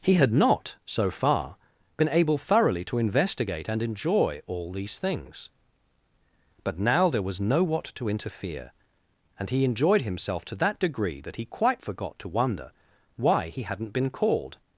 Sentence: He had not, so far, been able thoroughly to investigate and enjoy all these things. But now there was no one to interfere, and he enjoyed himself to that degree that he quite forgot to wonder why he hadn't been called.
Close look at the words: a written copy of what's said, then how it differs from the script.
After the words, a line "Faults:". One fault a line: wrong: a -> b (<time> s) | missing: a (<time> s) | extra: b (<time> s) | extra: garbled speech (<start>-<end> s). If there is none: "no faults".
He had not, so far, been able thoroughly to investigate and enjoy all these things. But now there was no what to interfere, and he enjoyed himself to that degree that he quite forgot to wonder why he hadn't been called.
Faults:
wrong: one -> what (7.6 s)